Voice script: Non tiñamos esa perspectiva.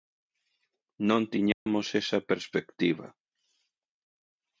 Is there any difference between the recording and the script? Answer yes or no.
no